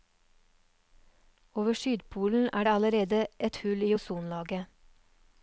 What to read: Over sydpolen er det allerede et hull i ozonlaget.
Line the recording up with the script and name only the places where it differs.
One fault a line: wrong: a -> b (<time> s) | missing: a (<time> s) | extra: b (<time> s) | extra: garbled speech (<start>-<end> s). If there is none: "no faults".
no faults